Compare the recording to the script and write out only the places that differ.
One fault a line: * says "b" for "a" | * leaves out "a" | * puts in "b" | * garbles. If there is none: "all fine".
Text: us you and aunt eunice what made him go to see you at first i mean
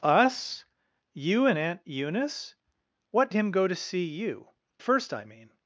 * leaves out "made"
* leaves out "at"